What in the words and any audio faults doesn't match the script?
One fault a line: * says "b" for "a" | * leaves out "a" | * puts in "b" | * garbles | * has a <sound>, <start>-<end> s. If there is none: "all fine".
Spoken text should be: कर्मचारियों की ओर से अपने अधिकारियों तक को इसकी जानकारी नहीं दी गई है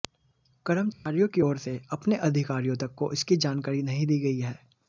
* has a dropout, 0.9-1.1 s